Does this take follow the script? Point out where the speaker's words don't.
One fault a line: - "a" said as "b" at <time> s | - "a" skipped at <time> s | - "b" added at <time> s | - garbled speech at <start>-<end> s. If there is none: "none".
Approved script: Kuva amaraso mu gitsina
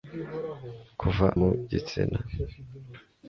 - "amaraso" skipped at 1.3 s